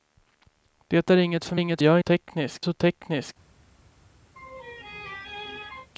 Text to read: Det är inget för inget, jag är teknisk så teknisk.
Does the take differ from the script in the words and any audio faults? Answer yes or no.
yes